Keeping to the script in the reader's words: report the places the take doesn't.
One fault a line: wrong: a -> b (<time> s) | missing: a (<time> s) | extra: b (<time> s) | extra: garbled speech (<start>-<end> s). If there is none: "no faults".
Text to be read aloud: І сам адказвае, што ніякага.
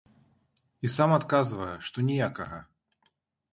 no faults